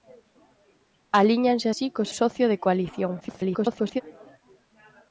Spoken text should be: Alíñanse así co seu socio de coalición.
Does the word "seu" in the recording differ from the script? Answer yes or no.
yes